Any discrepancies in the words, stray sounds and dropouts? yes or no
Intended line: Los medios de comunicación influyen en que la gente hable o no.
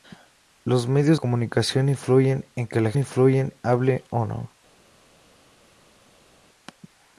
yes